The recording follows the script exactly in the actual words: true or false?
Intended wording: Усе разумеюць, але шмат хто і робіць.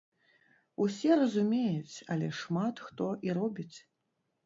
true